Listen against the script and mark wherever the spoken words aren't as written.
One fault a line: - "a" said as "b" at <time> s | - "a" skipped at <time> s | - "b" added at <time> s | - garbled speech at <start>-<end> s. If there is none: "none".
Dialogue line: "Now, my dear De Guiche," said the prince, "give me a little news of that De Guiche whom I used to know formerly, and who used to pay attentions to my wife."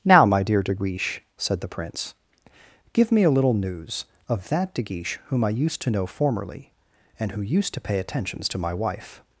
none